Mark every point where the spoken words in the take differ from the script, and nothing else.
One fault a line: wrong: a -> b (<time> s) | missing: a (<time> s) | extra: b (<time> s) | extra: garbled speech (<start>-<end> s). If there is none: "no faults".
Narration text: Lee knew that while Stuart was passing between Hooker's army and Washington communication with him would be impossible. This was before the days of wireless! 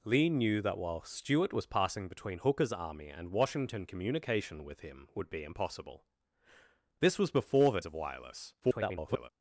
missing: days (7.8 s)
extra: garbled speech (8.6-9.3 s)